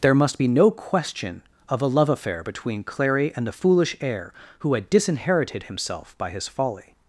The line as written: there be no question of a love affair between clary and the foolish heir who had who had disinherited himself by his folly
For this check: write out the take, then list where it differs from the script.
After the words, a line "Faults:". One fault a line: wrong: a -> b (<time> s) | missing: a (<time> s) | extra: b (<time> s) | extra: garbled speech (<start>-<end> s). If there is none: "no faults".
there must be no question of a love affair between clary and the foolish heir who had disinherited himself by his folly
Faults:
extra: must (0.1 s)
missing: who had (4.9 s)